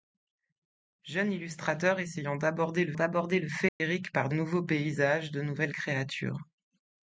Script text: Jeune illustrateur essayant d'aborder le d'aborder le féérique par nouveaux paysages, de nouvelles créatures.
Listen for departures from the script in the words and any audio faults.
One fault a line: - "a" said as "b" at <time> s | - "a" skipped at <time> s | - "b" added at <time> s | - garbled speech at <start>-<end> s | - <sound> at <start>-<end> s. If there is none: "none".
- dropout at 3.7-3.8 s